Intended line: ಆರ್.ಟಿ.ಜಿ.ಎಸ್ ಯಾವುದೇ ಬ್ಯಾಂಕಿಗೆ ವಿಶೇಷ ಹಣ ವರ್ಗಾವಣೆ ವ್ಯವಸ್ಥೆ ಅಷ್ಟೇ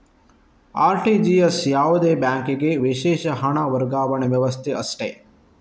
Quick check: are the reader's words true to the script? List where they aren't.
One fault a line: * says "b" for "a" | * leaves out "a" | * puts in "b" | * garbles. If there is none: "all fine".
all fine